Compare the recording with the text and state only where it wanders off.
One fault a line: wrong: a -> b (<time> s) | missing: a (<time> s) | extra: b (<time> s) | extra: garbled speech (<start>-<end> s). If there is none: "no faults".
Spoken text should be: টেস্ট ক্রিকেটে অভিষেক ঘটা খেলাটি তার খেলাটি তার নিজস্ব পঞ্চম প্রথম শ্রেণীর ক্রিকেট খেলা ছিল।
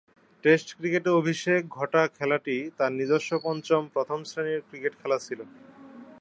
missing: খেলাটি তার (2.9 s)